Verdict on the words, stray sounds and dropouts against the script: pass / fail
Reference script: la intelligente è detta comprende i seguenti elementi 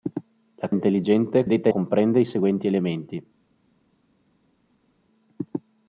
pass